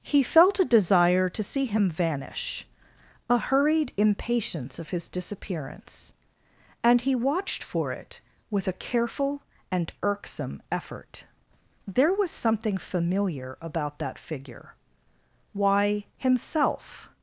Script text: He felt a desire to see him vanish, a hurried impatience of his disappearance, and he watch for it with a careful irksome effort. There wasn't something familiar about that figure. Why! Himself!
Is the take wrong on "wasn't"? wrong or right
wrong